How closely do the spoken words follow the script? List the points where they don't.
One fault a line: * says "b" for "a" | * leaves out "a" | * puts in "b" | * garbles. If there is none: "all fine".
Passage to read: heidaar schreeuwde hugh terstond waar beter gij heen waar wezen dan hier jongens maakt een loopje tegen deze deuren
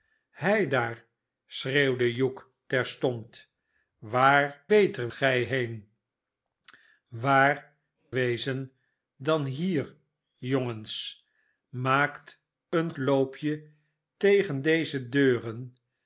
all fine